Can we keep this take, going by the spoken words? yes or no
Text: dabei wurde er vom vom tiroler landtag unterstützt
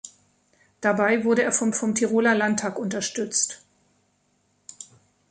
yes